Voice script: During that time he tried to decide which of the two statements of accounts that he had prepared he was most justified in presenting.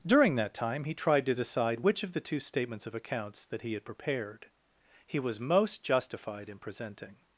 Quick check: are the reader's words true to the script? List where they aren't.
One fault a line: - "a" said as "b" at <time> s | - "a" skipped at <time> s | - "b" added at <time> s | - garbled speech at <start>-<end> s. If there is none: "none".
none